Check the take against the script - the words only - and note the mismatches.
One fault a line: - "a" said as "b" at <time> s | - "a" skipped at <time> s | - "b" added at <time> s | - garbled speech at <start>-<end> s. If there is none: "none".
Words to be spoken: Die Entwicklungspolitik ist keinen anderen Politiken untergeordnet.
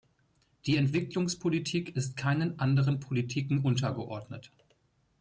none